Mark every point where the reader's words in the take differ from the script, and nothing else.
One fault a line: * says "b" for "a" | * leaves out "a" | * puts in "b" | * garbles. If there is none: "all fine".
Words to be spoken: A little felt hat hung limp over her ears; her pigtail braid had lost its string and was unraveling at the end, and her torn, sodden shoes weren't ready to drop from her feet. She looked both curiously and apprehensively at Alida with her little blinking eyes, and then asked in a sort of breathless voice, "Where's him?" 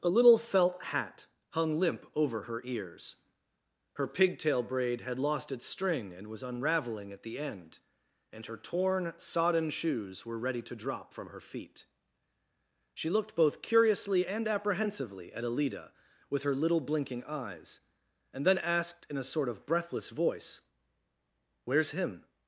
* says "were" for "weren't"